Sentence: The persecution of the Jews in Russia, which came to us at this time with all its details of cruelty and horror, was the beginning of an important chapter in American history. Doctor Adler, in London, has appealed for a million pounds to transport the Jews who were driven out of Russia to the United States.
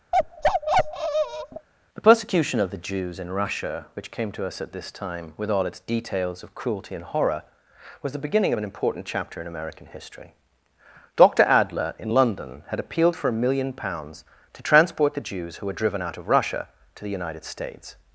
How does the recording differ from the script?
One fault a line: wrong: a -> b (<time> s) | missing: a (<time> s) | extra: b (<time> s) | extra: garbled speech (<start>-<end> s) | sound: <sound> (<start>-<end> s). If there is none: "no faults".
sound: bark (0.1-1.7 s)
wrong: has -> had (12.7 s)